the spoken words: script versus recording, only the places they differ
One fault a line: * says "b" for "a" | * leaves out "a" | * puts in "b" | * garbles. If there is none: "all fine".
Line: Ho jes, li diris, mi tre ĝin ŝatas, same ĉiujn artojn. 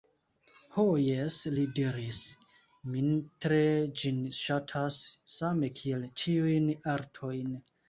* puts in "kiel"